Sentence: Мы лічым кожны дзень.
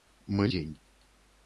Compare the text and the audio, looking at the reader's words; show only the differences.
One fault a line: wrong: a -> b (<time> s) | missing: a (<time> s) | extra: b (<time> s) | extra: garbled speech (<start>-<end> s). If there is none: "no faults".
missing: лічым кожны (0.5 s)